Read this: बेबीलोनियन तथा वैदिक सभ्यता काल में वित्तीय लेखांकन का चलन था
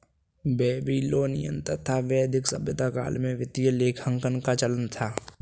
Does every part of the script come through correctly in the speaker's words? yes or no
yes